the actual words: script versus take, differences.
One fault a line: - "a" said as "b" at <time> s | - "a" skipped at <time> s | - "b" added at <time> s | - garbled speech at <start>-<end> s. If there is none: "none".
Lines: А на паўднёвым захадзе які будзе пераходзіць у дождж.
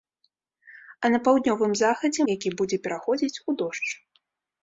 none